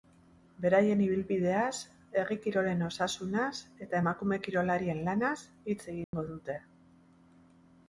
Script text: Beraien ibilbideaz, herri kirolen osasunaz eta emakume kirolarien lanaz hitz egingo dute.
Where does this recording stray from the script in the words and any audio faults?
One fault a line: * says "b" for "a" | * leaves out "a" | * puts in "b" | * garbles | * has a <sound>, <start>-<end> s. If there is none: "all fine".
* has a dropout, 6.0-6.1 s